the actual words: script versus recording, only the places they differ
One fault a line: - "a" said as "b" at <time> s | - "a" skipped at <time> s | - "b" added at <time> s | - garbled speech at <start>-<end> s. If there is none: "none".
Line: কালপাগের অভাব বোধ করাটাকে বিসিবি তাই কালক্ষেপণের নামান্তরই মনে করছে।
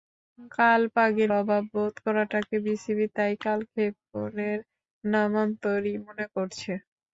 none